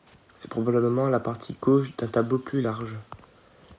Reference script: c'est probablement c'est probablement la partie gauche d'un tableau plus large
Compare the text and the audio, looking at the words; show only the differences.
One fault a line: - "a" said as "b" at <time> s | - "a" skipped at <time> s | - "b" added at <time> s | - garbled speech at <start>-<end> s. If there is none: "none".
- "c'est probablement" skipped at 1.1 s